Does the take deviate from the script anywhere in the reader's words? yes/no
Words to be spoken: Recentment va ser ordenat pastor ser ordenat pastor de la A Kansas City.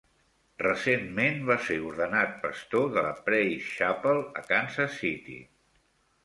yes